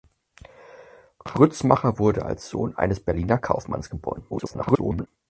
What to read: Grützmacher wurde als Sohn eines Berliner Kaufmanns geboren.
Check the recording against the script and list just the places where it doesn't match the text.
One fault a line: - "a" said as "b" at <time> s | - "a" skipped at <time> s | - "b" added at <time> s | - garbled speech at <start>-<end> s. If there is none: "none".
- garbled speech at 4.3-5.1 s